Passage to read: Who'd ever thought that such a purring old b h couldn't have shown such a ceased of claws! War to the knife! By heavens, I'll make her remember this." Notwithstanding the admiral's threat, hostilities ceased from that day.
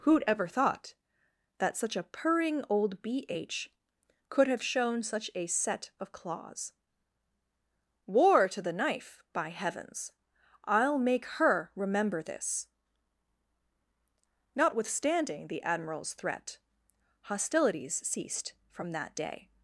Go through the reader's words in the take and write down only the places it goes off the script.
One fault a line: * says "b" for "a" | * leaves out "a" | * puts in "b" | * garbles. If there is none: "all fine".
* says "could" for "couldn't"
* says "set" for "ceased"